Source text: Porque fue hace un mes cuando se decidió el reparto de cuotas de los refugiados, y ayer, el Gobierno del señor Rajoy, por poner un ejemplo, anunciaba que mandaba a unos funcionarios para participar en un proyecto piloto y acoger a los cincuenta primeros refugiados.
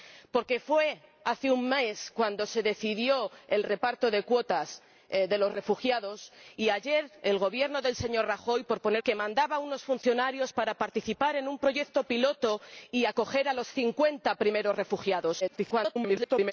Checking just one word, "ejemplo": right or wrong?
wrong